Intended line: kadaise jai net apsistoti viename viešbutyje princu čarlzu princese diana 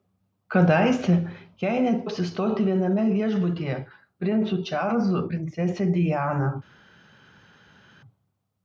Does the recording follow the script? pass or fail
pass